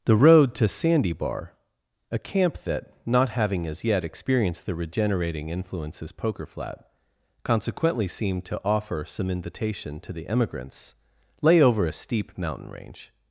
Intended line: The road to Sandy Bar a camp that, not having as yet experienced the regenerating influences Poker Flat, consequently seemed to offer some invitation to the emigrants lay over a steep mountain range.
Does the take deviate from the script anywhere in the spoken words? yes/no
no